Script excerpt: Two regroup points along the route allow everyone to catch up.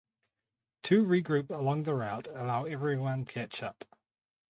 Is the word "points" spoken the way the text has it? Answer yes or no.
no